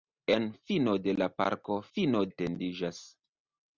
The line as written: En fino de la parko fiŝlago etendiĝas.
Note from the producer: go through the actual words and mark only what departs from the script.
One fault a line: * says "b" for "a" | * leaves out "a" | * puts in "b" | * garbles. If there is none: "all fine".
* says "fino" for "fiŝlago"